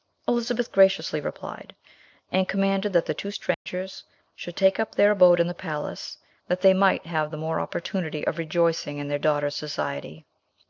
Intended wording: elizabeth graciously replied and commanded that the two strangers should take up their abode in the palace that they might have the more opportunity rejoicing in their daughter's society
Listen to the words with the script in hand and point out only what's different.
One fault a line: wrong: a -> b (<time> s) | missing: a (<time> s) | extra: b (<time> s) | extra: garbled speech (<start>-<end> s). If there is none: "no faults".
extra: of (8.3 s)